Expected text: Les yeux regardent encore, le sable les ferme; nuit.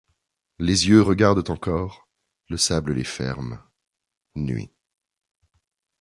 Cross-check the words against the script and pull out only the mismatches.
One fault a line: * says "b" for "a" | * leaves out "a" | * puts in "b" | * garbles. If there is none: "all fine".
all fine